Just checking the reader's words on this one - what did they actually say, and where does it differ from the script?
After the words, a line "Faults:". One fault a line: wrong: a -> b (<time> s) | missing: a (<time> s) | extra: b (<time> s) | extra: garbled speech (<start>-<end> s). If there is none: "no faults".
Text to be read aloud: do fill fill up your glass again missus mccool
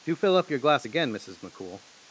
do fill up your glass again missus mccool
Faults:
missing: fill (0.4 s)